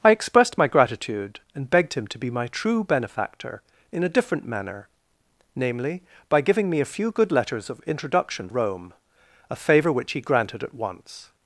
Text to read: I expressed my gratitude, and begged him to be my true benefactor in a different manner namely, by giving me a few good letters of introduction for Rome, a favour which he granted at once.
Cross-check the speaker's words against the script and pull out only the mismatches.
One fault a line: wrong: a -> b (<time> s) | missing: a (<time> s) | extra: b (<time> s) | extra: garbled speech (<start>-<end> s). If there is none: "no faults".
missing: for (8.5 s)